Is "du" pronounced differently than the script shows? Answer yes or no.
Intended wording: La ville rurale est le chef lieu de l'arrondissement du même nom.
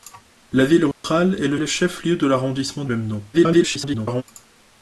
yes